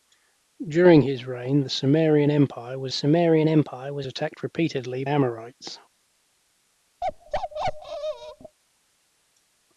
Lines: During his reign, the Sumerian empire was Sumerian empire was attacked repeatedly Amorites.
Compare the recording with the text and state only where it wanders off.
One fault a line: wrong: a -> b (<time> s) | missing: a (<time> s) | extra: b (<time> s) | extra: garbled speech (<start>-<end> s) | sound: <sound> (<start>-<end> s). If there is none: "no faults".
sound: bark (7.0-8.6 s)